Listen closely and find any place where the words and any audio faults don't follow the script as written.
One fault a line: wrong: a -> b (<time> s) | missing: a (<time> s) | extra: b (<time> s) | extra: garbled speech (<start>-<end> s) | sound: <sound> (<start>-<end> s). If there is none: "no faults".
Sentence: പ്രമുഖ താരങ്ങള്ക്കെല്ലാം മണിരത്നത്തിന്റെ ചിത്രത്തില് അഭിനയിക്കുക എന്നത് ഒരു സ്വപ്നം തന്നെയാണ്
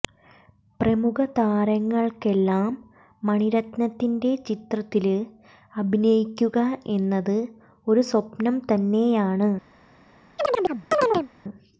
sound: chirp (10.4-11.3 s)